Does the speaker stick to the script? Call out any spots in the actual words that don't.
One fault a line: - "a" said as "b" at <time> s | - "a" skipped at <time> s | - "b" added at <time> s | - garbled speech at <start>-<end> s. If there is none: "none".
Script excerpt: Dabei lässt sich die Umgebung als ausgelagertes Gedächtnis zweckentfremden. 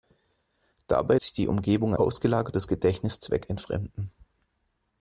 - "lässt" skipped at 1.2 s
- "als" skipped at 1.9 s